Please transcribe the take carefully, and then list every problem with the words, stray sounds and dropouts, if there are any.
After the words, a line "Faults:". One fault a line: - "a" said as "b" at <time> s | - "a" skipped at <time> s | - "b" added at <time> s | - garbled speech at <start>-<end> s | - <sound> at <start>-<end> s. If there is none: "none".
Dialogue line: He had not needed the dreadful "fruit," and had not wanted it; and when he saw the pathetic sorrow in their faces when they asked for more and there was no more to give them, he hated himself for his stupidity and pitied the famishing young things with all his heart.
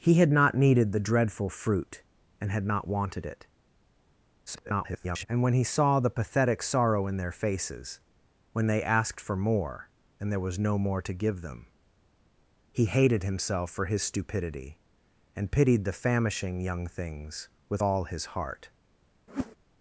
He had not needed the dreadful "fruit," and had not wanted it; [garbled] and when he saw the pathetic sorrow in their faces when they asked for more and there was no more to give them, he hated himself for his stupidity and pitied the famishing young things with all his heart.
Faults:
- garbled speech at 4.5-5.3 s
- whoosh at 19.3-19.6 s